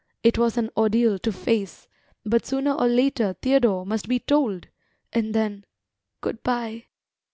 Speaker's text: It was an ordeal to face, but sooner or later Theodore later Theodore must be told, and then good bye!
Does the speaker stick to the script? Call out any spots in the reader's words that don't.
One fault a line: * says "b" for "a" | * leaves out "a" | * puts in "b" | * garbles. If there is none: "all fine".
* leaves out "later Theodore"